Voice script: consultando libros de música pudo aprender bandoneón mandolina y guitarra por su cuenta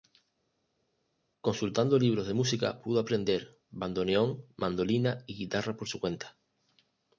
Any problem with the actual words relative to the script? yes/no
no